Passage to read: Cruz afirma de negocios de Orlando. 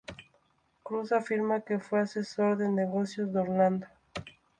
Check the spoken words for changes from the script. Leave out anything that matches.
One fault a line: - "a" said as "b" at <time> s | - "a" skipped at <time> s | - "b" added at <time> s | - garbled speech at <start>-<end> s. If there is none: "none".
- "que fue asesor" added at 1.6 s